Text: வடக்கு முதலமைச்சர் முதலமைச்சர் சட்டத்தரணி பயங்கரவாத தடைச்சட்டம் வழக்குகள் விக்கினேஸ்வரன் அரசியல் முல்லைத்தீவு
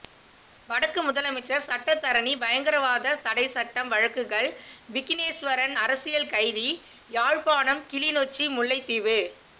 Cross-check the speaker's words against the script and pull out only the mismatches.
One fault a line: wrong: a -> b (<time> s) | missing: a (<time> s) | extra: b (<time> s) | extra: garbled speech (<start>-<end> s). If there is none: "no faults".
missing: முதலமைச்சர் (1.6 s)
extra: கைதி யாழ்ப்பாணம் கிளிநொச்சி (6.3 s)